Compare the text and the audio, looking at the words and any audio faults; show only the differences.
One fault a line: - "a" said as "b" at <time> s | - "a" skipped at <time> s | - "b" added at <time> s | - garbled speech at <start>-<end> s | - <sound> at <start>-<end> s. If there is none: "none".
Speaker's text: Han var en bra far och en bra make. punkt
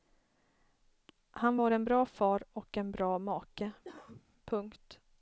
- cough at 3.8-4.2 s